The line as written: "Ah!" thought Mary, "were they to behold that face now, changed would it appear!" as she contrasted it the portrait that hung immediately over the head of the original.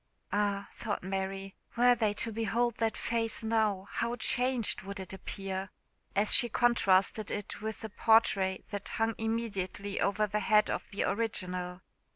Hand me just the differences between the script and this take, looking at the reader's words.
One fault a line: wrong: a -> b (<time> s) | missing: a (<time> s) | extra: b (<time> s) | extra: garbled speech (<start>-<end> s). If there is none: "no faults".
extra: how (3.9 s)
extra: with (7.6 s)